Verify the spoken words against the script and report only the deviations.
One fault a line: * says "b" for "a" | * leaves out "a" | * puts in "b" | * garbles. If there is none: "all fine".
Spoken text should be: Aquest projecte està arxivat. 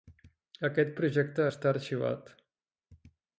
all fine